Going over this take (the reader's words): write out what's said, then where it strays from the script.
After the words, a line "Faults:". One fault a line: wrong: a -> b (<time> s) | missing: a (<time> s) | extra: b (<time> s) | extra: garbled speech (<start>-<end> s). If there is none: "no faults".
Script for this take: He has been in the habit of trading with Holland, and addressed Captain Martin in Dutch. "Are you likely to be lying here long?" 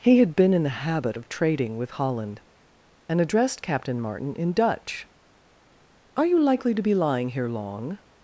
He had been in the habit of trading with Holland, and addressed Captain Martin in Dutch. "Are you likely to be lying here long?"
Faults:
wrong: has -> had (0.2 s)